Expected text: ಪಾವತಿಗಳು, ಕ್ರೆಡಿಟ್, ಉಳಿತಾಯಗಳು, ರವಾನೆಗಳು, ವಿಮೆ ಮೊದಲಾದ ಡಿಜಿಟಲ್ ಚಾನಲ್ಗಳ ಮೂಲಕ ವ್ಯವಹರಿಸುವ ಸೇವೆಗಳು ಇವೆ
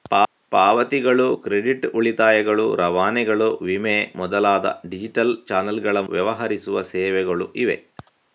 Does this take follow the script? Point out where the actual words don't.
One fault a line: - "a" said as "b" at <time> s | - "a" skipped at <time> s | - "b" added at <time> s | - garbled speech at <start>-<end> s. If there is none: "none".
- "ಮೂಲಕ" skipped at 6.0 s